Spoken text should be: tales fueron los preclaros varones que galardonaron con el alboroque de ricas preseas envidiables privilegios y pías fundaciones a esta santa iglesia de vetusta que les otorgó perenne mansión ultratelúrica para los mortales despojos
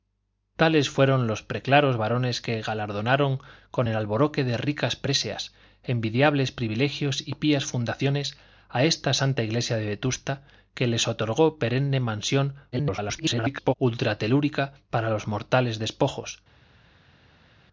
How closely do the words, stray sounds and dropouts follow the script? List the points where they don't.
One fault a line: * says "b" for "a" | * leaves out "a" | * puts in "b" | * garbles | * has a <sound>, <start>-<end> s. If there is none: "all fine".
* garbles